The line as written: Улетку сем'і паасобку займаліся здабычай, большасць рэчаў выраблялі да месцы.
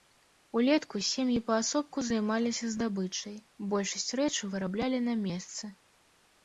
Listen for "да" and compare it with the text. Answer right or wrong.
wrong